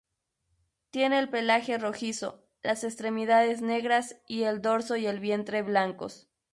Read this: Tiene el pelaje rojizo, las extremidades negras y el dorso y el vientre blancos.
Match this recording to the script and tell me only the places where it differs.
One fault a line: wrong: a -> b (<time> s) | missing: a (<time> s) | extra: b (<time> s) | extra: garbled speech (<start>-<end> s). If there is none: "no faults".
no faults